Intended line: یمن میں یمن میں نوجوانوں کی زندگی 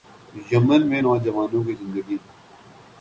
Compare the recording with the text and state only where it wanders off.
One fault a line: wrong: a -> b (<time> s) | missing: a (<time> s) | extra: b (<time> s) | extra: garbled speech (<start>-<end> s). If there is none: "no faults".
missing: یمن میں (1.0 s)